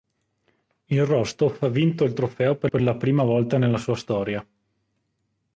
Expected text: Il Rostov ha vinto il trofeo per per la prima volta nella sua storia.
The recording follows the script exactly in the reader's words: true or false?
true